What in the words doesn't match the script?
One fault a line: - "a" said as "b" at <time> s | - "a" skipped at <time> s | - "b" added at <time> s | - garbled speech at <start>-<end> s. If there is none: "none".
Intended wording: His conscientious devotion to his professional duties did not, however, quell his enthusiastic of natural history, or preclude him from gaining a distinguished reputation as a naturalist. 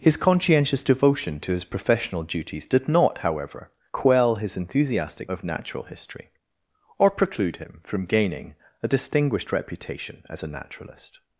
none